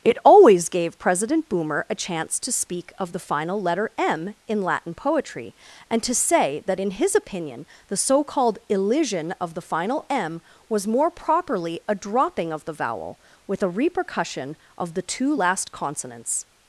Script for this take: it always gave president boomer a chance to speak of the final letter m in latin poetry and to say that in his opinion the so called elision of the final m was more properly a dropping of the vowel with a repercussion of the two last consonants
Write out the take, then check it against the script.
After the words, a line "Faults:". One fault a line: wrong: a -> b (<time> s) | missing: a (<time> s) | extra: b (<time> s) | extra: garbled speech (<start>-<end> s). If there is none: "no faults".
it always gave president boomer a chance to speak of the final letter m in latin poetry and to say that in his opinion the so called elision of the final m was more properly a dropping of the vowel with a repercussion of the two last consonants
Faults:
no faults